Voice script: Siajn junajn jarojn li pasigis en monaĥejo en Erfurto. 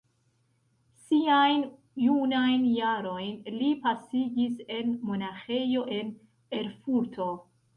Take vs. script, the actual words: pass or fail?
pass